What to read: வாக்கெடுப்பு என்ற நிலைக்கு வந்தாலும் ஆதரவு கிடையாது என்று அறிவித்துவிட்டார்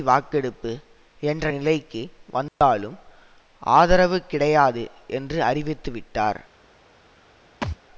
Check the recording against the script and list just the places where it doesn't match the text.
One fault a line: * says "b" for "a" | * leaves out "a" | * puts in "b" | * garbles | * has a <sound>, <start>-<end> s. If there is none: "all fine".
* has a dropout, 2.5-2.6 s
* has a thud, 7.6-7.8 s